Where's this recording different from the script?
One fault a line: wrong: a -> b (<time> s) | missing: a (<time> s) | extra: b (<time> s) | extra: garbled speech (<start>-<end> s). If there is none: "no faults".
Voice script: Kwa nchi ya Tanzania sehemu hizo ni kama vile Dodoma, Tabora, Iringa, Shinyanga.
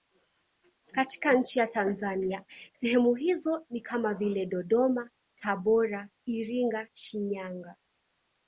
wrong: Kwa -> Katika (0.9 s)